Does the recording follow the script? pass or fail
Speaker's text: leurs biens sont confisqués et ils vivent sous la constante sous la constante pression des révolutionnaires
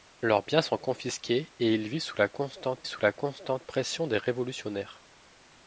pass